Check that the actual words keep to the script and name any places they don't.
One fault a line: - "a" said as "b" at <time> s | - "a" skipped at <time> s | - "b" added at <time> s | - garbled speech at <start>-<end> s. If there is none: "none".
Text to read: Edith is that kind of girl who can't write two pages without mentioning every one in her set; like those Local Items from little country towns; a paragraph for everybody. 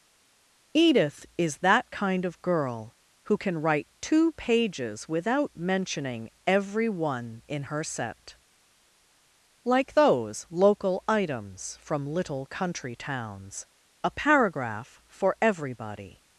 - "can't" said as "can" at 3.4 s